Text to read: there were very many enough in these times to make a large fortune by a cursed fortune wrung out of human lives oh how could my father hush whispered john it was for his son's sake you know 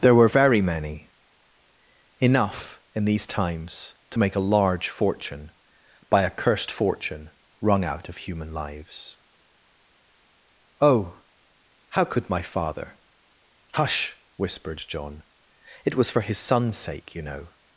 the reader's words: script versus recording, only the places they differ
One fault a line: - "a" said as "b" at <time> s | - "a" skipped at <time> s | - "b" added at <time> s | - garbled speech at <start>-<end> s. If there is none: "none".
none